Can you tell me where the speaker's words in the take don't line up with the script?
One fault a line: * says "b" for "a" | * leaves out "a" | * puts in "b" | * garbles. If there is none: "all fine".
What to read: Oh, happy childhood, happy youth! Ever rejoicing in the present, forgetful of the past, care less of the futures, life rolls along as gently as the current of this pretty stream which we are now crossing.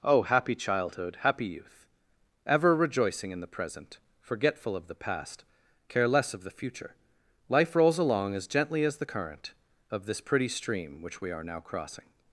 * says "future" for "futures"